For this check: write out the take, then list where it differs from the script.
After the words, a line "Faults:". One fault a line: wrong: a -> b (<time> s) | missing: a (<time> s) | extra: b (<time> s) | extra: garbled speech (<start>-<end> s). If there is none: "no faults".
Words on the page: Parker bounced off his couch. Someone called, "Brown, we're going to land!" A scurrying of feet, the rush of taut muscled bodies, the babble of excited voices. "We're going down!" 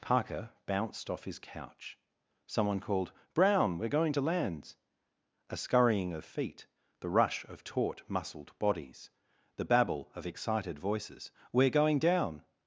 Parker bounced off his couch. Someone called, "Brown, we're going to lands!" A scurrying of feet, the rush of taut muscled bodies, the babble of excited voices. "We're going down!"
Faults:
wrong: land -> lands (4.2 s)